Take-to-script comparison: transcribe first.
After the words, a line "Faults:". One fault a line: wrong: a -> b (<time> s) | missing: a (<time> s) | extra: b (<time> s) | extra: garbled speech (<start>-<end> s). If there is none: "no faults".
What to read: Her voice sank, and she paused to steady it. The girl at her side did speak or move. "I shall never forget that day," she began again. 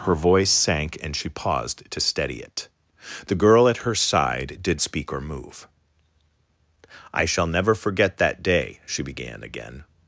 Her voice sank, and she paused to steady it. The girl at her side did speak or move. "I shall never forget that day," she began again.
Faults:
no faults